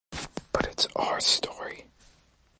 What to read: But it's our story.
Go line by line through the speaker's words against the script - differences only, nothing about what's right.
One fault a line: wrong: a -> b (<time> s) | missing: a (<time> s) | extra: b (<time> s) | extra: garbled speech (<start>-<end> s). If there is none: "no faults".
no faults